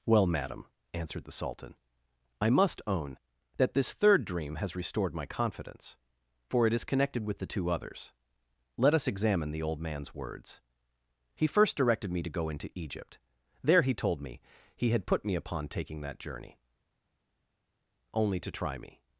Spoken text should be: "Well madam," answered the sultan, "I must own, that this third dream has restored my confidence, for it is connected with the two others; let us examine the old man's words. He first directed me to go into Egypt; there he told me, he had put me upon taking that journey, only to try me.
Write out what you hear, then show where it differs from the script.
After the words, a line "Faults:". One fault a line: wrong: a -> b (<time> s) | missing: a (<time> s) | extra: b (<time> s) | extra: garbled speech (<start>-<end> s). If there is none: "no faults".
"Well madam," answered the sultan, "I must own, that this third dream has restored my confidence, for it is connected with the two others; let us examine the old man's words. He first directed me to go into Egypt; there he told me, he had put me upon taking that journey, only to try me.
Faults:
no faults